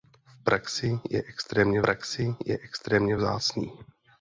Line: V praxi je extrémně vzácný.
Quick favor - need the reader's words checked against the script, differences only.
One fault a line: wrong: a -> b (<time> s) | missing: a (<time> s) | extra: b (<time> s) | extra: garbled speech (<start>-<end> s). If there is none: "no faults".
extra: praxi je extrémně (1.8 s)